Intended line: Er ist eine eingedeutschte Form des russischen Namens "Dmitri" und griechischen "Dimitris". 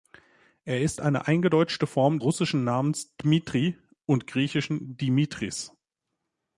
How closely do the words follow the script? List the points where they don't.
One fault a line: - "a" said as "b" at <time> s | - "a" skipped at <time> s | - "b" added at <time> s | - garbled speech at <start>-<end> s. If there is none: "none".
- "des" skipped at 2.2 s